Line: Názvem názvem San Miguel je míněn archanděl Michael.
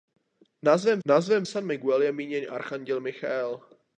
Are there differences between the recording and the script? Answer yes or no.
no